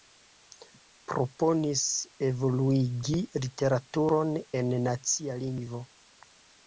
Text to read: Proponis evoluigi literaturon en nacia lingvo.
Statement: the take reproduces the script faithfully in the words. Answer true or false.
true